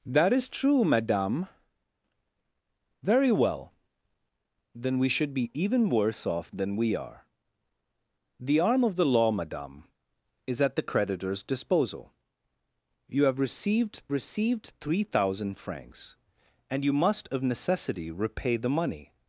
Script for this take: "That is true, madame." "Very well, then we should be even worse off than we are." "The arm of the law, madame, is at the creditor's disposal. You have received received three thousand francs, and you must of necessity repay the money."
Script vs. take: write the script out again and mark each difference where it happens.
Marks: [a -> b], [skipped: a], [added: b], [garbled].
"That is true, madame." "Very well, then we should be even worse off than we are." "The arm of the law, madame, is at the creditor's disposal. You have received received three thousand francs, and you must of necessity repay the money."